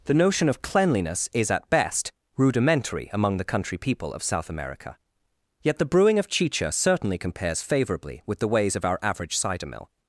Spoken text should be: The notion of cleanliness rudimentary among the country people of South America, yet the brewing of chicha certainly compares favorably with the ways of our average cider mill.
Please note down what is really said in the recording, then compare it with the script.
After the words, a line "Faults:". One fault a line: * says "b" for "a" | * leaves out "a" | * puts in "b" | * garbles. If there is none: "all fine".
The notion of cleanliness is, at best, rudimentary among the country people of South America, yet the brewing of chicha certainly compares favorably with the ways of our average cider mill.
Faults:
* puts in "is at best"